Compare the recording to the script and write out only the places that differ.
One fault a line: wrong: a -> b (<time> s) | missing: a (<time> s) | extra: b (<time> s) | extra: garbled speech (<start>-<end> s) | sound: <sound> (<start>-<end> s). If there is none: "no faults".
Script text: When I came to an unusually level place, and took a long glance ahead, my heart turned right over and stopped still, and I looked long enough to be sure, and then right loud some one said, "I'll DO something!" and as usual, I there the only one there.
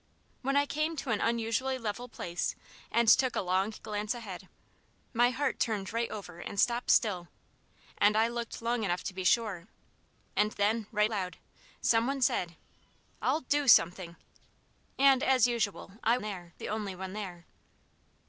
no faults